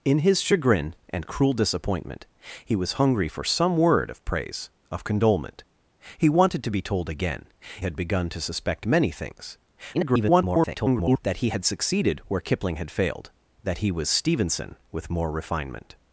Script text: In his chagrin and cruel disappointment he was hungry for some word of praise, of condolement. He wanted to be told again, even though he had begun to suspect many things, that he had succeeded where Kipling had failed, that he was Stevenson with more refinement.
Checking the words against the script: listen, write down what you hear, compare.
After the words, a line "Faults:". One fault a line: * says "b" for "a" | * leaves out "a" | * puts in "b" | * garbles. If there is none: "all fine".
In his chagrin and cruel disappointment he was hungry for some word of praise, of condolement. He wanted to be told again, had begun to suspect many things, [garbled] that he had succeeded where Kipling had failed, that he was Stevenson with more refinement.
Faults:
* leaves out "even though he"
* garbles